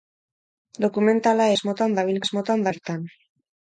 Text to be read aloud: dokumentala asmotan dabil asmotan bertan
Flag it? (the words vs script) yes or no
no